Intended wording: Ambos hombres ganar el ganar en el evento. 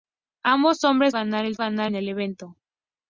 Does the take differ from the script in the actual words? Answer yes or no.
no